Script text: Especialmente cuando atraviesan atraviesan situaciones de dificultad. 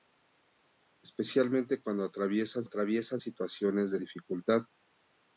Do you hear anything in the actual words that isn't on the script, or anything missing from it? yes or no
no